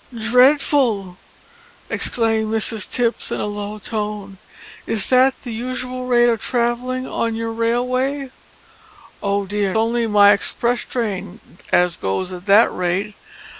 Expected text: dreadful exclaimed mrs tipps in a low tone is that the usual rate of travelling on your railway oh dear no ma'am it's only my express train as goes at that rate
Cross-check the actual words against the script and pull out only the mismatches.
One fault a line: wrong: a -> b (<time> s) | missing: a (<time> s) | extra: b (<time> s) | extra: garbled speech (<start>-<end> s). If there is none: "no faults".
missing: no ma'am it's (9.8 s)